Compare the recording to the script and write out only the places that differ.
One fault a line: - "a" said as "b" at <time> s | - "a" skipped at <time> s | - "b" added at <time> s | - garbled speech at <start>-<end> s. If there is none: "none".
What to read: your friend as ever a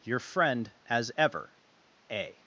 none